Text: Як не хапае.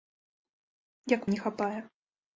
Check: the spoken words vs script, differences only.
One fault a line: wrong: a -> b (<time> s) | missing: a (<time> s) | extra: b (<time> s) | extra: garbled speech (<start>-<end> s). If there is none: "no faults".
no faults